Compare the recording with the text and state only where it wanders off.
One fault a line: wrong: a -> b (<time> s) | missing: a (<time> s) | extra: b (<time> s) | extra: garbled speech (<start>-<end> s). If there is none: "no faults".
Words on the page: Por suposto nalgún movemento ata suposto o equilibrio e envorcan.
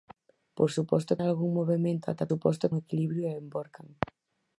no faults